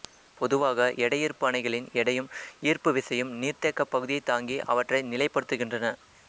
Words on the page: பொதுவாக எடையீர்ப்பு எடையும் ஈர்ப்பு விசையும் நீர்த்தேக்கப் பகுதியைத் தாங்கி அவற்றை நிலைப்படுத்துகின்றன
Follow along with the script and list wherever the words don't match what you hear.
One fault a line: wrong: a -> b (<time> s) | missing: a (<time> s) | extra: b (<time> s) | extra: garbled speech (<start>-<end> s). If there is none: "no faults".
extra: அணைகளின் (1.5 s)